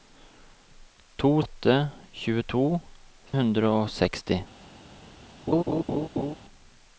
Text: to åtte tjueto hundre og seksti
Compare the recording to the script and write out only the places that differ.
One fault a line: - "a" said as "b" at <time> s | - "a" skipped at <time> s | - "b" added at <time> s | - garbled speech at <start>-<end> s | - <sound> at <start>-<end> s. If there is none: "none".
- laugh at 5.5-6.4 s